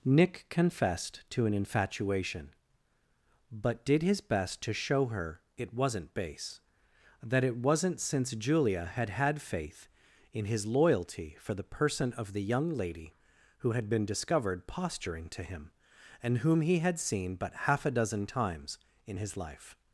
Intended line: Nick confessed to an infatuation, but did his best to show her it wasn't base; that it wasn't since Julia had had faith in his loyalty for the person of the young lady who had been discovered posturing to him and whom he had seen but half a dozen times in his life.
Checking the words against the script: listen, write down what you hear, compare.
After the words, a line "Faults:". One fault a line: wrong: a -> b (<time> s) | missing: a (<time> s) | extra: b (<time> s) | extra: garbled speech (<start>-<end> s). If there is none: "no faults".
Nick confessed to an infatuation, but did his best to show her it wasn't base; that it wasn't since Julia had had faith in his loyalty for the person of the young lady who had been discovered posturing to him and whom he had seen but half a dozen times in his life.
Faults:
no faults